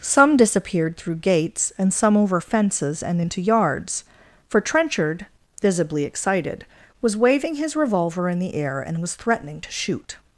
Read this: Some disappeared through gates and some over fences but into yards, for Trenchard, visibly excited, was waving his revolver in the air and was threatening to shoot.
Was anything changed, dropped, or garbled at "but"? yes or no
yes